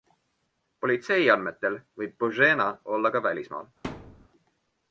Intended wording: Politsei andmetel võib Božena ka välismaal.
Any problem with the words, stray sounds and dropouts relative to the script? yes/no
yes